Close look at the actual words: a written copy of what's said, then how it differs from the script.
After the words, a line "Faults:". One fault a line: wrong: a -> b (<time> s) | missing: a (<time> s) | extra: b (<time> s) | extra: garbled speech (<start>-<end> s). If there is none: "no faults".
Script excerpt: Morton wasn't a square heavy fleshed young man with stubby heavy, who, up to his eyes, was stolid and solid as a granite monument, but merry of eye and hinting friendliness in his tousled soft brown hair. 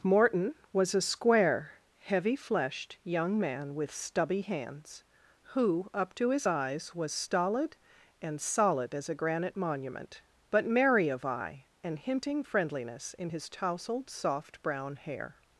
Morton was a square heavy fleshed young man with stubby hands, who, up to his eyes, was stolid and solid as a granite monument, but merry of eye and hinting friendliness in his tousled soft brown hair.
Faults:
wrong: wasn't -> was (0.7 s)
wrong: heavy -> hands (4.4 s)